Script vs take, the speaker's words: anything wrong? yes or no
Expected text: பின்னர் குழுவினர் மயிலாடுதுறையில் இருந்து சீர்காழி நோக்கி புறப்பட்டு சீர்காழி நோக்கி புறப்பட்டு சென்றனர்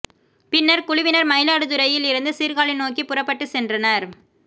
yes